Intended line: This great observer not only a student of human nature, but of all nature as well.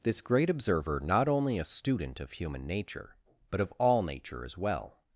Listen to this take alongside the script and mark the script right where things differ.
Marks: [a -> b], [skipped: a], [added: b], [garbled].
This great observer not only a student of human nature, but of all nature as well.